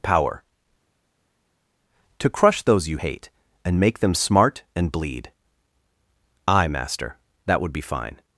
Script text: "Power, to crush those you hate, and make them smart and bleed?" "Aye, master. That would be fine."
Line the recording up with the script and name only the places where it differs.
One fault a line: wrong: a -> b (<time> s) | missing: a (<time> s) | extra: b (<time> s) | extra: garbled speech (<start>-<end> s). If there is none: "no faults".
no faults